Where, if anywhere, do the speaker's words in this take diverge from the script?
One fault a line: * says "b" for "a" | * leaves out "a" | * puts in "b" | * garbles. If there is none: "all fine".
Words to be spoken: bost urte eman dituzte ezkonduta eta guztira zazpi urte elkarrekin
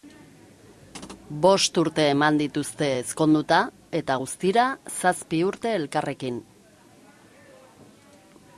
all fine